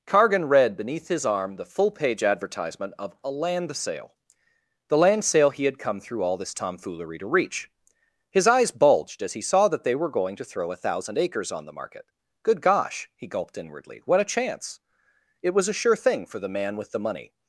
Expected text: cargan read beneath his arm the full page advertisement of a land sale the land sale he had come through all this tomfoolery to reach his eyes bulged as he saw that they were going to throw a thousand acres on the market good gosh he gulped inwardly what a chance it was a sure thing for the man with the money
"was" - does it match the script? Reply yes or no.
yes